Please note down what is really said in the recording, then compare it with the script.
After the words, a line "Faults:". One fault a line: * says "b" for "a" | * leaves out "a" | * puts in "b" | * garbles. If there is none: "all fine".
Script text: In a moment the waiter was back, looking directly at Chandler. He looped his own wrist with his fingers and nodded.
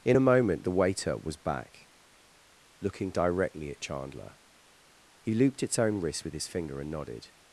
In a moment the waiter was back, looking directly at Chandler. He looped its own wrist with his finger and nodded.
Faults:
* says "its" for "his"
* says "finger" for "fingers"